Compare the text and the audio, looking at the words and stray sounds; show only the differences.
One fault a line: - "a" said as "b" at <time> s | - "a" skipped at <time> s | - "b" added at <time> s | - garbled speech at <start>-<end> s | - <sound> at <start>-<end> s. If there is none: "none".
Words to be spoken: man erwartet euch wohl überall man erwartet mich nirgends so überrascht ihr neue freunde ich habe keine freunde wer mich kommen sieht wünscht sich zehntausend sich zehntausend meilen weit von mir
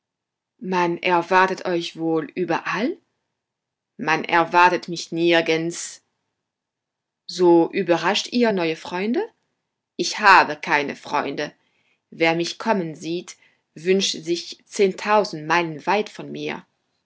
- "sich zehntausend" skipped at 15.5 s